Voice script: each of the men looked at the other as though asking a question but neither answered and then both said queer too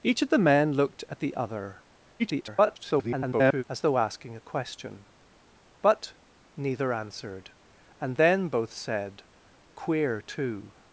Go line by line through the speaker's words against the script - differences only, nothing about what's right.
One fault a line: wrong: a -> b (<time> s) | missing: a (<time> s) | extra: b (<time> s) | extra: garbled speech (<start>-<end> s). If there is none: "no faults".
extra: garbled speech (2.2-3.6 s)